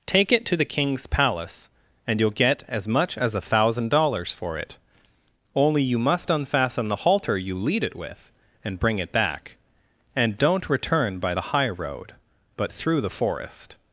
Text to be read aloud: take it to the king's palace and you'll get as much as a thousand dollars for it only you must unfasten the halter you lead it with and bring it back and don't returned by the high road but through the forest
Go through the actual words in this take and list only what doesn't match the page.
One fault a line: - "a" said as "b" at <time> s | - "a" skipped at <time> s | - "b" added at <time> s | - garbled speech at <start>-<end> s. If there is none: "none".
- "returned" said as "return" at 10.7 s